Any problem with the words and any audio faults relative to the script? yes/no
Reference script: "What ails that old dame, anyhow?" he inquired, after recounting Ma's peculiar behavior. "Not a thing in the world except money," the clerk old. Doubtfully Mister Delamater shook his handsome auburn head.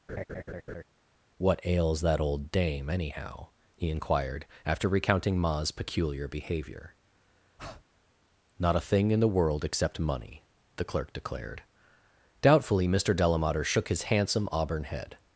yes